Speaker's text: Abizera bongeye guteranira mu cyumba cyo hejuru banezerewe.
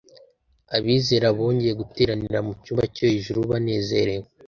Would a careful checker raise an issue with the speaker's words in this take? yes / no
no